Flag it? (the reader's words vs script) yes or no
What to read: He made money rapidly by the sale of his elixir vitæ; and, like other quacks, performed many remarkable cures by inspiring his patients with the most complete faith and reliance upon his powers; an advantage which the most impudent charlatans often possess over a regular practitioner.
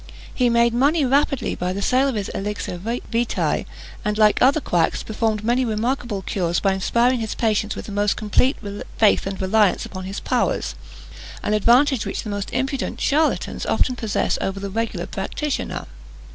yes